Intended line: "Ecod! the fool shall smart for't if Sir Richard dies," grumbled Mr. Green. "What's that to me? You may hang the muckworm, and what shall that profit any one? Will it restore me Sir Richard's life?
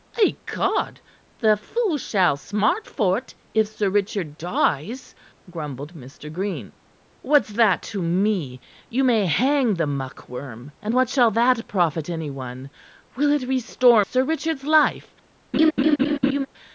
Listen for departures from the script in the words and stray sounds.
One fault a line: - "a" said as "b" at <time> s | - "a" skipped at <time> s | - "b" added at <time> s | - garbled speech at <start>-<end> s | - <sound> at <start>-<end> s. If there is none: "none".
- "me" skipped at 14.0 s
- laugh at 15.5-16.5 s